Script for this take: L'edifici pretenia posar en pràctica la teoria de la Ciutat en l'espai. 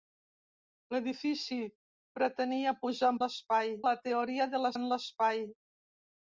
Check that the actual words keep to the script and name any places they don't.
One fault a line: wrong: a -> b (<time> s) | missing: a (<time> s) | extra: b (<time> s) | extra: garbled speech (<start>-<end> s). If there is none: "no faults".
wrong: pràctica -> l'espai (3.2 s)
missing: Ciutat (4.7 s)